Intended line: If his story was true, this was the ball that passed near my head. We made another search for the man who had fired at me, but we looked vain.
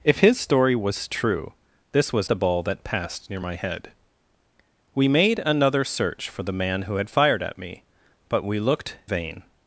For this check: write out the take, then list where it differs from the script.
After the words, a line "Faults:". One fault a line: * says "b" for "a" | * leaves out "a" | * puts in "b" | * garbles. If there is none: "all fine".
If his story was true, this was the ball that passed near my head. We made another search for the man who had fired at me, but we looked vain.
Faults:
all fine